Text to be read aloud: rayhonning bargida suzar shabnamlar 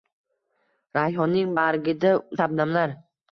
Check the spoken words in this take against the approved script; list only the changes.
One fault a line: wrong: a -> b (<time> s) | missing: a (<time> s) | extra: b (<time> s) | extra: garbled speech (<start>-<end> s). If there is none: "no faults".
missing: suzar (2.1 s)